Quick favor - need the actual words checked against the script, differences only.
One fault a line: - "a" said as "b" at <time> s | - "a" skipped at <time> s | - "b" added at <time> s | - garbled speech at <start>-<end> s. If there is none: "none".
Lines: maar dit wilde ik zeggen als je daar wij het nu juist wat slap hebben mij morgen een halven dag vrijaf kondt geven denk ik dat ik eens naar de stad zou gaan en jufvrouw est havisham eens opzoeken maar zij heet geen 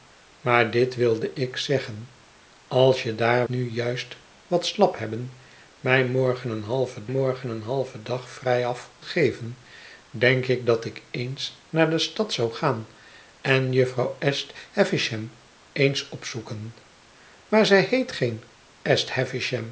- "wij het" skipped at 3.5 s
- "morgen een halven" added at 7.0 s
- "kondt" skipped at 8.9 s